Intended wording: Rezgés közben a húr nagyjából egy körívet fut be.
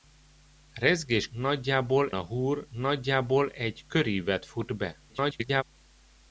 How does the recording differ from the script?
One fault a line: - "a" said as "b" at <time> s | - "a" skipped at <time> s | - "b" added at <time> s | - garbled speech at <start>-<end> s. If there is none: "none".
- "közben" said as "nagyjából" at 1.3 s
- garbled speech at 5.1-5.6 s